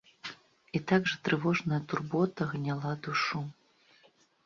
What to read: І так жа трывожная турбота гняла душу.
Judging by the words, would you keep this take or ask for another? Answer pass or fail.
pass